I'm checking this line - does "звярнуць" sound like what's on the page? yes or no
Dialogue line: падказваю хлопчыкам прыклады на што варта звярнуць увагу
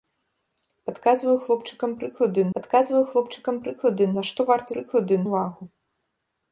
no